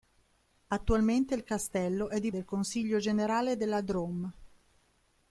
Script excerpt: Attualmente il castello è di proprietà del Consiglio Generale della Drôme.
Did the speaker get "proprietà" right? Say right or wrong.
wrong